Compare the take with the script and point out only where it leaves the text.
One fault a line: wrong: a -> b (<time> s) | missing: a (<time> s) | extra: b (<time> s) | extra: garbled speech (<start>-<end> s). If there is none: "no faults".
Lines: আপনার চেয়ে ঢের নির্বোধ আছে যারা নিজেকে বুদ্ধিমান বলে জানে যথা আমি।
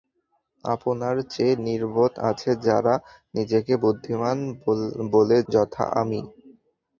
missing: ঢের (1.6 s)
missing: জানে (5.4 s)